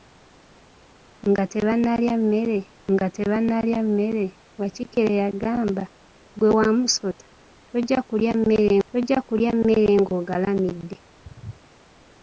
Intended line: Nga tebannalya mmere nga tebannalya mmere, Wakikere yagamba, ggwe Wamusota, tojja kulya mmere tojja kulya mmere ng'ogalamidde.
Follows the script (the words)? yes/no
yes